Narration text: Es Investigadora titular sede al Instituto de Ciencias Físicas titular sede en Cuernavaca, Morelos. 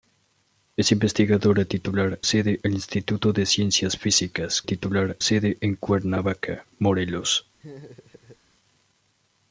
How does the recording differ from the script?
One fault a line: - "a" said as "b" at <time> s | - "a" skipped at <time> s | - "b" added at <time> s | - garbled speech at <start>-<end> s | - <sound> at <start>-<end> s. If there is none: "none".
- laugh at 7.6-8.4 s